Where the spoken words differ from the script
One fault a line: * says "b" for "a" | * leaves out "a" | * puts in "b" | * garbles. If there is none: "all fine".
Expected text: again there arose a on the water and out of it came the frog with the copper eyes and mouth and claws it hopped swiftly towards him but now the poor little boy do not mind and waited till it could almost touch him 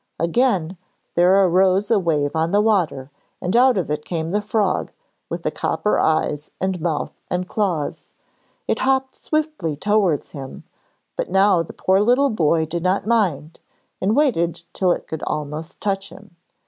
* puts in "wave"
* says "did" for "do"